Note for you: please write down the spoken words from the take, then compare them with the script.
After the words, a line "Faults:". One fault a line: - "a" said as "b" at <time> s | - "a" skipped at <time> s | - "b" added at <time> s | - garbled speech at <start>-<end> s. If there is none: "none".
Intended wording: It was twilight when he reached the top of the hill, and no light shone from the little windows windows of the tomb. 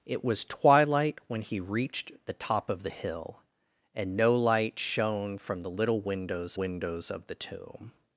It was twilight when he reached the top of the hill, and no light shone from the little windows windows of the tomb.
Faults:
none